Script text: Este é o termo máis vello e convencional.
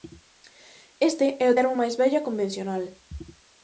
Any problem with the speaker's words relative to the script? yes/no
no